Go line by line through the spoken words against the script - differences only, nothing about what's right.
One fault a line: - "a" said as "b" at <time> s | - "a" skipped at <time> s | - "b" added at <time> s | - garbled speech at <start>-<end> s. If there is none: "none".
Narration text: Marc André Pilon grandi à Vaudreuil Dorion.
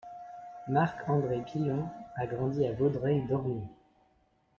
- "a" added at 2.1 s